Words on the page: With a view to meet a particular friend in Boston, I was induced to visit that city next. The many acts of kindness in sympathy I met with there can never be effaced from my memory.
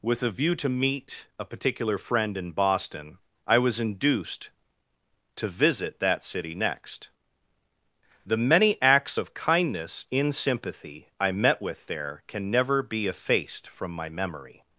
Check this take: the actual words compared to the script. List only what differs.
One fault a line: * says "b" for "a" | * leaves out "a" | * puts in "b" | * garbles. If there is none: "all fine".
all fine